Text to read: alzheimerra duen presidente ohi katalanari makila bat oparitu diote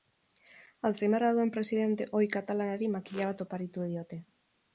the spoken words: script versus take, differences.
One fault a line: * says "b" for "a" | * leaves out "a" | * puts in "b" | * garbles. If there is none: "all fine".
all fine